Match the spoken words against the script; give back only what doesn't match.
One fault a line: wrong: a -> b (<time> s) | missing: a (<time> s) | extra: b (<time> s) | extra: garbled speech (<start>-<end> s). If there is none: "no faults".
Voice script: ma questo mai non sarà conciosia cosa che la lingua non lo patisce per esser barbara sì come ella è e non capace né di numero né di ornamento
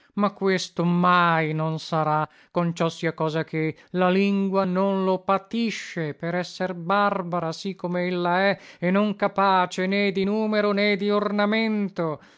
no faults